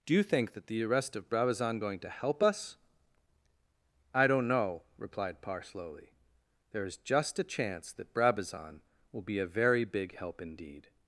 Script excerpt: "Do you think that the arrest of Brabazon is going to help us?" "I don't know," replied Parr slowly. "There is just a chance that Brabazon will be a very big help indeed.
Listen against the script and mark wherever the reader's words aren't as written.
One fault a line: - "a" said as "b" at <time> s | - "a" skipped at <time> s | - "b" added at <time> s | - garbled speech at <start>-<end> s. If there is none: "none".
- "is" skipped at 1.8 s